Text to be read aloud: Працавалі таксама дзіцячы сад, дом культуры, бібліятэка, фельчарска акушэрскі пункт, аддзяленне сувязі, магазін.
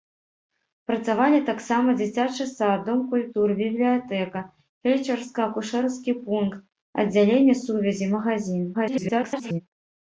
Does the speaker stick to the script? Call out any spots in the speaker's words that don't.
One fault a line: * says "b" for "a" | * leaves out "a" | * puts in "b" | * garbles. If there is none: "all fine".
* garbles